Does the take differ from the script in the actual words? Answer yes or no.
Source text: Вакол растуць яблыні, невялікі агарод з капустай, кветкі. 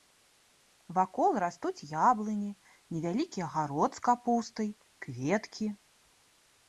no